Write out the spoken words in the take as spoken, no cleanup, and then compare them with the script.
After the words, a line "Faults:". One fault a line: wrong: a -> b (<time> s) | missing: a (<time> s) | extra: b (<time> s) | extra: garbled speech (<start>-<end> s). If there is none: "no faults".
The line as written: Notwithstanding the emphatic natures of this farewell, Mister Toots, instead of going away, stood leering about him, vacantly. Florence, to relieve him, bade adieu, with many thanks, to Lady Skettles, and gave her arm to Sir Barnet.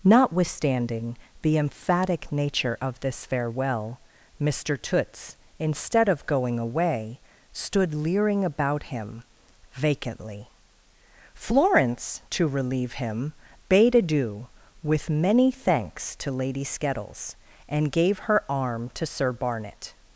Notwithstanding the emphatic nature of this farewell, Mister Toots, instead of going away, stood leering about him, vacantly. Florence, to relieve him, bade adieu, with many thanks, to Lady Skettles, and gave her arm to Sir Barnet.
Faults:
wrong: natures -> nature (2.3 s)